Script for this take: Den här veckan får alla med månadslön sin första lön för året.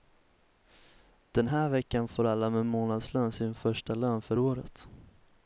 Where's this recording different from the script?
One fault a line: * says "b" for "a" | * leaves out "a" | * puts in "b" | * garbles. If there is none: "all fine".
all fine